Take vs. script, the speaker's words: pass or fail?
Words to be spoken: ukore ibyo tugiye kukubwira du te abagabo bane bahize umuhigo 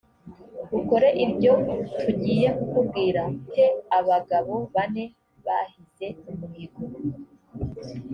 fail